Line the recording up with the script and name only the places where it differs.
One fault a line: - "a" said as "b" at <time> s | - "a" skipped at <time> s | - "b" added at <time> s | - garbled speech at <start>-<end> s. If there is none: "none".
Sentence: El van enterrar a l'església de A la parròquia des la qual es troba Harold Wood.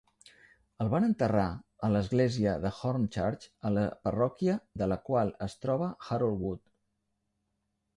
- "Hornchurch" added at 2.8 s
- "des" said as "de" at 4.8 s